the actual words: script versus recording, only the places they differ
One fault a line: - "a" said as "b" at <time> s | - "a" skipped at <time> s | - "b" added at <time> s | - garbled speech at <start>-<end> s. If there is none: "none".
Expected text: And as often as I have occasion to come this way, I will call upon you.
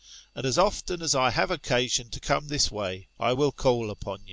none